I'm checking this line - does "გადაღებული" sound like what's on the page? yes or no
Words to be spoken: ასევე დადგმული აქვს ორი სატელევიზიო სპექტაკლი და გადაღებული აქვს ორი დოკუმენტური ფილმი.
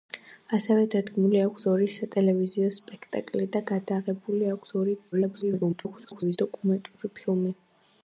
yes